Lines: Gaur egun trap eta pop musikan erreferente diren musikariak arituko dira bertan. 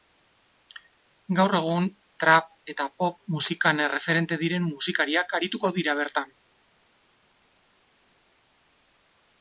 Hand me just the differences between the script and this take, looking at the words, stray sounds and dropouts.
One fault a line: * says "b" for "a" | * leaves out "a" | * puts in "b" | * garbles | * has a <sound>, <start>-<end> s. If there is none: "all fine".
all fine